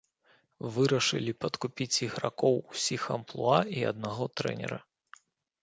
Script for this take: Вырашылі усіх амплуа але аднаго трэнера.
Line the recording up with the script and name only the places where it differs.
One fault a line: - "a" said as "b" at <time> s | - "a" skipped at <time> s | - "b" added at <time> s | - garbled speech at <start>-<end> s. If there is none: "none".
- "падкупіць ігракоў" added at 1.4 s
- "але" said as "і" at 3.8 s